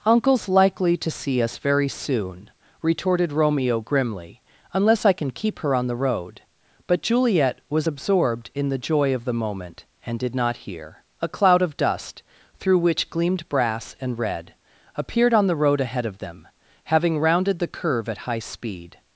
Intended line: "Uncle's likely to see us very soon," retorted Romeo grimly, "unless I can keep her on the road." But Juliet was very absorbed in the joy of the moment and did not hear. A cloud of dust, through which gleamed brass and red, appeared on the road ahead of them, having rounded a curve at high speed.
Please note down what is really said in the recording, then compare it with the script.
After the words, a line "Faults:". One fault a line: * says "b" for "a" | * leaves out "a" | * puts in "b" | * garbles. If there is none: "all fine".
"Uncle's likely to see us very soon," retorted Romeo grimly, "unless I can keep her on the road." But Juliet was absorbed in the joy of the moment and did not hear. A cloud of dust, through which gleamed brass and red, appeared on the road ahead of them, having rounded the curve at high speed.
Faults:
* leaves out "very"
* says "the" for "a"